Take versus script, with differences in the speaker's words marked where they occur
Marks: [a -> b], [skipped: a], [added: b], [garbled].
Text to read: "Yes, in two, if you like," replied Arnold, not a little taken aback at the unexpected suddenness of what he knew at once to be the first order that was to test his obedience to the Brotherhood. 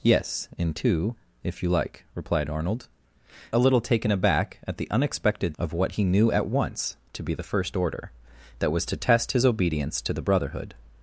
"Yes, in two, if you like," replied Arnold, [skipped: not] a little taken aback at the unexpected [skipped: suddenness] of what he knew at once to be the first order that was to test his obedience to the Brotherhood.